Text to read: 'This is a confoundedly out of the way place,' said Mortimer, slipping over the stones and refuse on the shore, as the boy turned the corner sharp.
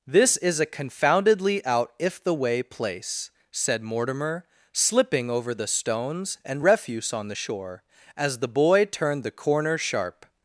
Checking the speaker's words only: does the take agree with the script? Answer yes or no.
no